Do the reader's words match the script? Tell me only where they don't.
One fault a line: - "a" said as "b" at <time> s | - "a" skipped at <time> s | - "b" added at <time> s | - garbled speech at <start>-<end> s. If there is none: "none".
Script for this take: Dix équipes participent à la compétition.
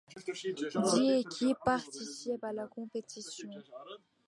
none